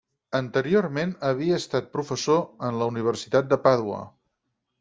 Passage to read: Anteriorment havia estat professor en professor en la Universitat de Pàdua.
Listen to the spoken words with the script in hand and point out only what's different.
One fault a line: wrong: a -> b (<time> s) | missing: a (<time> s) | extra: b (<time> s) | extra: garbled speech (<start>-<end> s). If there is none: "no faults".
missing: professor en (2.8 s)